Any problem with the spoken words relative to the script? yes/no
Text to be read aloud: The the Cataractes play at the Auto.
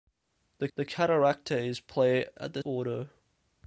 no